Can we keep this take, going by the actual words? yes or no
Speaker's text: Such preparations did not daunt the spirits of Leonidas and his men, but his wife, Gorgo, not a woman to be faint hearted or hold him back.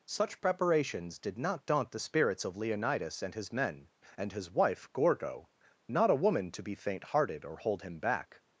no